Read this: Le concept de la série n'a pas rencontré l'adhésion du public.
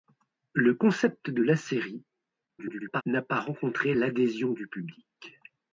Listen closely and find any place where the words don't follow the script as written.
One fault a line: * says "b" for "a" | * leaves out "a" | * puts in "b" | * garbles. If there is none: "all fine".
* garbles